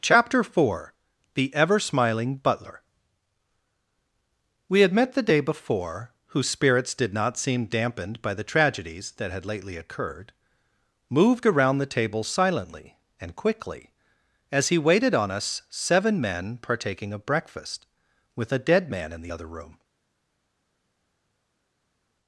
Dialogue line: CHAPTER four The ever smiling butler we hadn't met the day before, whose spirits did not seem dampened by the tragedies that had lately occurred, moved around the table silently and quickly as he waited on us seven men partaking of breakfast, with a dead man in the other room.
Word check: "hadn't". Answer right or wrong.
wrong